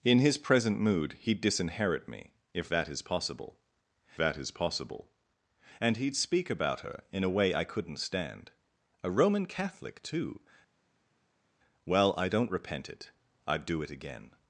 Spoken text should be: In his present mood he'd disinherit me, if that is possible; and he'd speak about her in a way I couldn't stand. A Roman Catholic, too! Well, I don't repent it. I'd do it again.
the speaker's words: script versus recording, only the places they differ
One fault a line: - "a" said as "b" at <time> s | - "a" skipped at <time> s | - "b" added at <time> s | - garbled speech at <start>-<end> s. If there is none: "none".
- "that is possible" added at 4.2 s